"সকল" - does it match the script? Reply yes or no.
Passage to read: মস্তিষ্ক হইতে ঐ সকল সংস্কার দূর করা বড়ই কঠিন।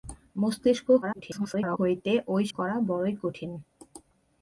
no